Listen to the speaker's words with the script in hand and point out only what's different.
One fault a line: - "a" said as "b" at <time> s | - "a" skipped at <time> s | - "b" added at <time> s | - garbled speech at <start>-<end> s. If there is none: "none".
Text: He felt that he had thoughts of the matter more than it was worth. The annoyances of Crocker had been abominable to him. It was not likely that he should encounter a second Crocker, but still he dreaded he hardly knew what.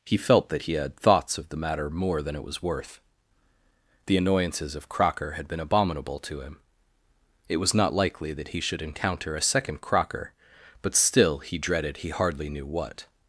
none